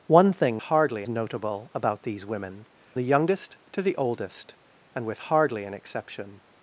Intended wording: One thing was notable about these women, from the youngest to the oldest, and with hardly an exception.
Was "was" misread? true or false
true